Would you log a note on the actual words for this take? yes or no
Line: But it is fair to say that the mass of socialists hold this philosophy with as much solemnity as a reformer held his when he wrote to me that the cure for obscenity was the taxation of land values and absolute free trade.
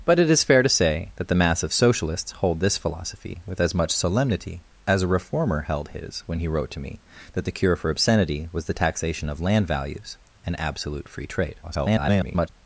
yes